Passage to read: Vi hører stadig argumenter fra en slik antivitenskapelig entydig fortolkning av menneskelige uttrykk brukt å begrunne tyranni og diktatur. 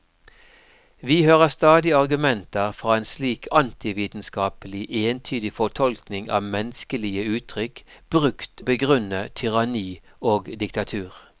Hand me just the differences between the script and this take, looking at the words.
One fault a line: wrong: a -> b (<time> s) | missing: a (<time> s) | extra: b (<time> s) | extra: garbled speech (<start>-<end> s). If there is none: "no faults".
no faults